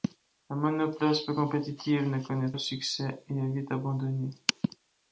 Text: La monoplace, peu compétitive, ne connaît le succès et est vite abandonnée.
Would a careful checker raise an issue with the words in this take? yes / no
no